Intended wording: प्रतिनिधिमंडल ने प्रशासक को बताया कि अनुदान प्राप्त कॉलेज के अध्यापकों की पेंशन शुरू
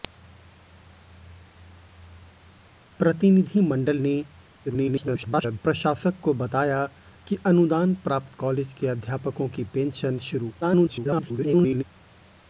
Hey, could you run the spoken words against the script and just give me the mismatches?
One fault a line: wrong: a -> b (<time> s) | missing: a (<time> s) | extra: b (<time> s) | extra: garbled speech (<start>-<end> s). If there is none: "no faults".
extra: garbled speech (4.6-5.6 s)
extra: garbled speech (10.6-11.8 s)